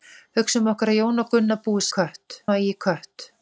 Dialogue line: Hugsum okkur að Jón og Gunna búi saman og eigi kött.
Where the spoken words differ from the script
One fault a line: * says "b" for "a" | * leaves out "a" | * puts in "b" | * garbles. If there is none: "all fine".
* says "kött" for "saman"